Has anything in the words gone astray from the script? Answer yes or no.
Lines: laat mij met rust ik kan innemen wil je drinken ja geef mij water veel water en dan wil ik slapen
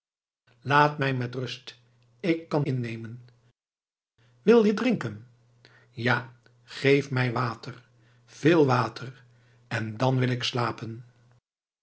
no